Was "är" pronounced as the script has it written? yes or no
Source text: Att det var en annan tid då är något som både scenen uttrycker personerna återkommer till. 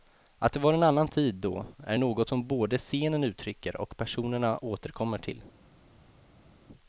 yes